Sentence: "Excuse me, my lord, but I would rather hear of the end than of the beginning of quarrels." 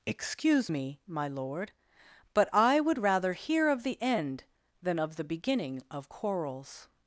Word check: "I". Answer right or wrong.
right